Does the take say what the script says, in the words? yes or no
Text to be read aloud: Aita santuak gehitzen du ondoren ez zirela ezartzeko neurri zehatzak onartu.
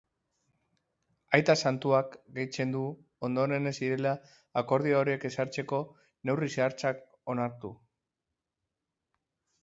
no